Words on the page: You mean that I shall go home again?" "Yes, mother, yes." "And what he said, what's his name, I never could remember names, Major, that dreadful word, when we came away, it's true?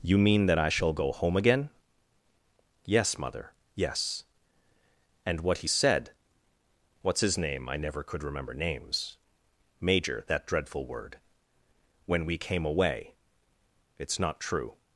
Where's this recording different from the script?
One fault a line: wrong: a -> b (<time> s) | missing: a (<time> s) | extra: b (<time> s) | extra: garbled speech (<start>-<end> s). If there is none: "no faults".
extra: not (14.2 s)